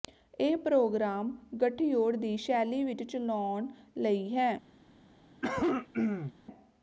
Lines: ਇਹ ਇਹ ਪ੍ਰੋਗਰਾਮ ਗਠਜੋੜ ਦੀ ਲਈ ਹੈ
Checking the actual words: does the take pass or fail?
fail